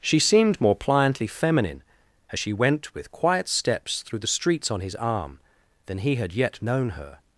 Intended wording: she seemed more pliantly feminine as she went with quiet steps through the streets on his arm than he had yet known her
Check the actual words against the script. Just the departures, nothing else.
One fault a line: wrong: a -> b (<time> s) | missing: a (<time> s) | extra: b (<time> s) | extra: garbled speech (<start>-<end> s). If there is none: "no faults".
no faults